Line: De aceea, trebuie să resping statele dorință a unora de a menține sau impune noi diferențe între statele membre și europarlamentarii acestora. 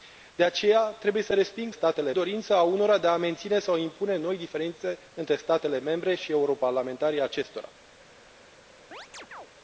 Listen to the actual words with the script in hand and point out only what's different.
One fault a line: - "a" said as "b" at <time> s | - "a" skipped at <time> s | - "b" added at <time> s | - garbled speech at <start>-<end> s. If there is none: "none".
none